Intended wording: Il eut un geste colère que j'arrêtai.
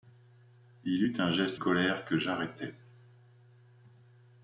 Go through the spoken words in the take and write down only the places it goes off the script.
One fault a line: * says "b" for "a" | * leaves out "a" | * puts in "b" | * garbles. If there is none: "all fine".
all fine